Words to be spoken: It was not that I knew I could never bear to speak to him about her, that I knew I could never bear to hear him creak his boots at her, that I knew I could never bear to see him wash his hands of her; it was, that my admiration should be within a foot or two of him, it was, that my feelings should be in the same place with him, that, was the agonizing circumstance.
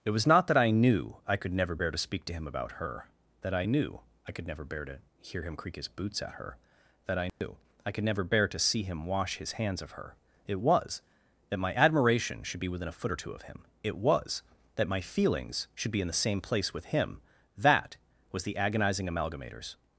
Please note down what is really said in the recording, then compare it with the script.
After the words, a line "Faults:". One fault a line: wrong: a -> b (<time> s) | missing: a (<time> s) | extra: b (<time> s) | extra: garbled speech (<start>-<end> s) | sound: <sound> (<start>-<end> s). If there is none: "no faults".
It was not that I knew I could never bear to speak to him about her, that I knew I could never bear to hear him creak his boots at her, that I knew I could never bear to see him wash his hands of her; it was, that my admiration should be within a foot or two of him, it was, that my feelings should be in the same place with him, that, was the agonizing amalgamators.
Faults:
sound: dropout (7.3-7.4 s)
wrong: circumstance -> amalgamators (19.1 s)